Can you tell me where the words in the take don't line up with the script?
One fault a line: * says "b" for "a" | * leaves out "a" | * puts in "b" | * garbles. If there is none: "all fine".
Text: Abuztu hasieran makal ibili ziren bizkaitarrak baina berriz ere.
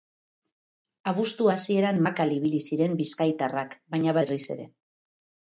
all fine